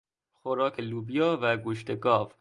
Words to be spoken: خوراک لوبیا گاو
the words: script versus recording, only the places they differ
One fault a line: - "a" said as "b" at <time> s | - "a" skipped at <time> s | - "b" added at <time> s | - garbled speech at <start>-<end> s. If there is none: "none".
- "و گوشت" added at 1.4 s